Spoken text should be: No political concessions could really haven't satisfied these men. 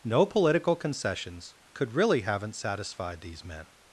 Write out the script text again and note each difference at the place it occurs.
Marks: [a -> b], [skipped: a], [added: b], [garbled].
No political concessions could really haven't satisfied these men.